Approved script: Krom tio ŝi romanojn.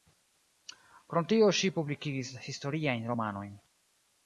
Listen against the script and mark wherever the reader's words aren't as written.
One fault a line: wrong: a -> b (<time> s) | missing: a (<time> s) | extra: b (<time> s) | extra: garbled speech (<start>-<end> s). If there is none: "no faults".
extra: publikigis historiajn (1.8 s)